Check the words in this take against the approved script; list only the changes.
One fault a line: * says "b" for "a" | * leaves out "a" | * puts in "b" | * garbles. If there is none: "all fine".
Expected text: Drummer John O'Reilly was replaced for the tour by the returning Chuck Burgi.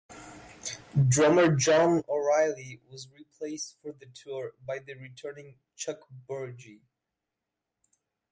all fine